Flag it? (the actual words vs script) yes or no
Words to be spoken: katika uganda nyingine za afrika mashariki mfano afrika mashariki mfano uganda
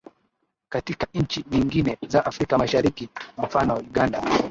yes